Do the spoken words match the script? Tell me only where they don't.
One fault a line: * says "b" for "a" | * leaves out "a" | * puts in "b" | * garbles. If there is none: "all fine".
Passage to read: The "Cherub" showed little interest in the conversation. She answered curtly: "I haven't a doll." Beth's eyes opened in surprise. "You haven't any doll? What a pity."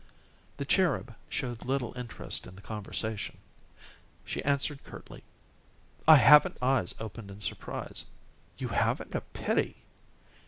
* leaves out "a doll Beth's"
* leaves out "any doll What"